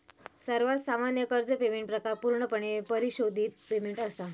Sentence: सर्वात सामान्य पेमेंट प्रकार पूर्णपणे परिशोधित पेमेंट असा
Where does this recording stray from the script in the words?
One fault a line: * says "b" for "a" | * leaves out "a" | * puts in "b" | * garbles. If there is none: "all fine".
* puts in "कर्ज"